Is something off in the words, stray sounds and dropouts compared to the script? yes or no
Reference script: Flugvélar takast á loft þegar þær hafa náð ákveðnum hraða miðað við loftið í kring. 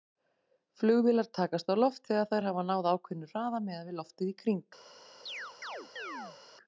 yes